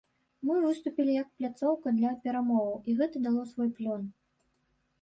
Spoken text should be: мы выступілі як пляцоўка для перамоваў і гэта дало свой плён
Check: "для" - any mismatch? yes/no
no